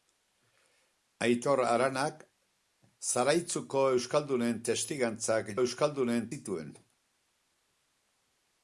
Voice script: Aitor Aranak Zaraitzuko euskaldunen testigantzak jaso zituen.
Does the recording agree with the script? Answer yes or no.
no